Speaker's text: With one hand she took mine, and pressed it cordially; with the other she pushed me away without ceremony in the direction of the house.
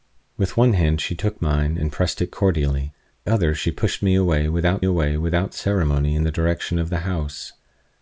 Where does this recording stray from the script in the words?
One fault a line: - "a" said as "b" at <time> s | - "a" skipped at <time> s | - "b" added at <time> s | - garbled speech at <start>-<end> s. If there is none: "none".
- "with the" skipped at 2.9 s
- "away without" added at 4.8 s